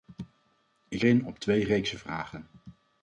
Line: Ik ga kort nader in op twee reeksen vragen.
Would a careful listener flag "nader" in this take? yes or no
yes